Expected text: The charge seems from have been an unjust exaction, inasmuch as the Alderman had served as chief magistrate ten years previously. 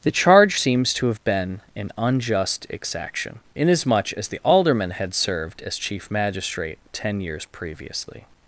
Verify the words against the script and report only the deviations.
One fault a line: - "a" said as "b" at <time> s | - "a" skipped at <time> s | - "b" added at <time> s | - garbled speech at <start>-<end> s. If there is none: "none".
- "from" said as "to" at 0.9 s